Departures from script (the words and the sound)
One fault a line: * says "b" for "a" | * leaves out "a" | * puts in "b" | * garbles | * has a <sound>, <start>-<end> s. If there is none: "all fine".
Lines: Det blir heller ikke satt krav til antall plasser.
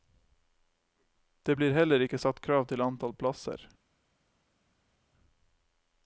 all fine